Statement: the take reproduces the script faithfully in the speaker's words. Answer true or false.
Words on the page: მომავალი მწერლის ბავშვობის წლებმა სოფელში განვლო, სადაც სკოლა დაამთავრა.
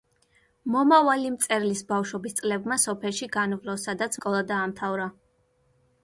true